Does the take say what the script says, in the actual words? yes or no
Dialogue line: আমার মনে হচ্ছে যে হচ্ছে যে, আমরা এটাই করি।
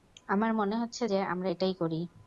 no